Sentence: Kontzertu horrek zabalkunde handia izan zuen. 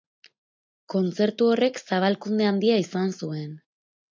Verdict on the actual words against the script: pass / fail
pass